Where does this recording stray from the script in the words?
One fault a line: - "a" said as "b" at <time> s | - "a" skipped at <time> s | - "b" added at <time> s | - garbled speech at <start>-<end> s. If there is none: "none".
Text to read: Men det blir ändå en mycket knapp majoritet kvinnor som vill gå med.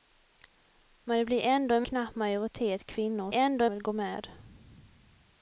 - "mycket" skipped at 1.9 s
- "som" said as "ändå" at 3.3 s